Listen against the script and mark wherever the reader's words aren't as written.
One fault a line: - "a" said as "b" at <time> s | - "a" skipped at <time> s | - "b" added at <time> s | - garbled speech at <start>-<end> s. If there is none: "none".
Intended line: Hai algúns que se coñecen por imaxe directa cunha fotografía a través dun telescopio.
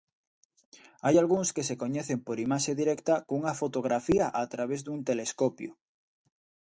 none